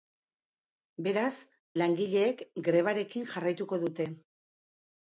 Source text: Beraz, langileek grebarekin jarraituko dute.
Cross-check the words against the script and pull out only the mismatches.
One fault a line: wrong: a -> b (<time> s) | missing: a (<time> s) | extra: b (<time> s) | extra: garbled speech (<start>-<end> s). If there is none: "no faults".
no faults